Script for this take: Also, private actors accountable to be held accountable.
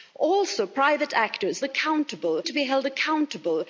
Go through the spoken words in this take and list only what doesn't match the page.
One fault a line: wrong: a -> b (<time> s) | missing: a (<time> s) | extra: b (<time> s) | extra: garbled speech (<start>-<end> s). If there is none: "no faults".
no faults